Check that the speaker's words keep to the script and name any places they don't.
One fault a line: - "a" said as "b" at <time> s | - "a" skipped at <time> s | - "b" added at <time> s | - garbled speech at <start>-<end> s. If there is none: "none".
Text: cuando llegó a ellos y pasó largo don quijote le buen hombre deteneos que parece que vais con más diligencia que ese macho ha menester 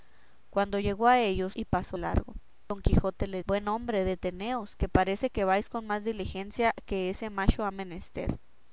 none